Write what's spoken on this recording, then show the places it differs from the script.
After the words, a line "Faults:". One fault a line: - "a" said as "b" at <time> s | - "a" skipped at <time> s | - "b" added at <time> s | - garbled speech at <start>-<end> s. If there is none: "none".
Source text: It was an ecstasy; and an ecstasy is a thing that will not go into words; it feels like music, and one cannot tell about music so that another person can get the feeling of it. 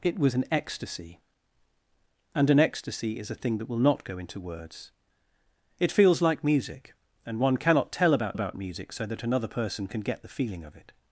It was an ecstasy; and an ecstasy is a thing that will not go into words; it feels like music, and one cannot tell about about music so that another person can get the feeling of it.
Faults:
- "about" added at 8.3 s